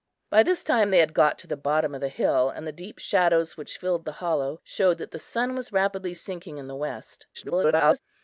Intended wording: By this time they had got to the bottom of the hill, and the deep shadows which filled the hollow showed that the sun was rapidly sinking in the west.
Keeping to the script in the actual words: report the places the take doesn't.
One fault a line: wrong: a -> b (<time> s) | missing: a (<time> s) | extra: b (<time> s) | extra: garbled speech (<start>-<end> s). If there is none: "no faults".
extra: garbled speech (7.3-8.0 s)